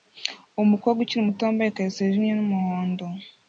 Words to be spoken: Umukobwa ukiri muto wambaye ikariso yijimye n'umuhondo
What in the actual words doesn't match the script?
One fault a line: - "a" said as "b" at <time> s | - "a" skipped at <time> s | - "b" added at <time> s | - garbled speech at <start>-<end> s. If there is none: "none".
none